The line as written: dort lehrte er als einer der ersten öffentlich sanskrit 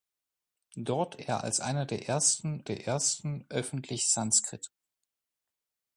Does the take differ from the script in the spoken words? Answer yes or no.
yes